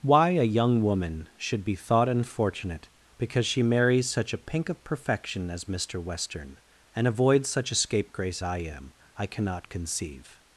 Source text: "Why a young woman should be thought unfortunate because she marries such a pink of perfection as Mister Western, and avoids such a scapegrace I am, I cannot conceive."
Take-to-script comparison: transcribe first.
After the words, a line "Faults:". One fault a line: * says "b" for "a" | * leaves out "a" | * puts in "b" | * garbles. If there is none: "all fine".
"Why a young woman should be thought unfortunate because she marries such a pink of perfection as Mister Western, and avoids such a scapegrace I am, I cannot conceive."
Faults:
all fine